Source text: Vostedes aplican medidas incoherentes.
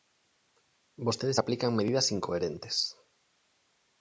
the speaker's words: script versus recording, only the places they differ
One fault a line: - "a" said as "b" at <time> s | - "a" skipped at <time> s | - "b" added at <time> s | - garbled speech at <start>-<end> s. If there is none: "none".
none